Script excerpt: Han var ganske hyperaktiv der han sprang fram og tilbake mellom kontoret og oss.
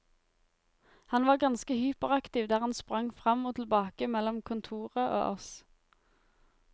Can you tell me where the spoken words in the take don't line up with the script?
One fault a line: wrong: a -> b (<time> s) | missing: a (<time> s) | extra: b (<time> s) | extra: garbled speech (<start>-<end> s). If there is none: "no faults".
no faults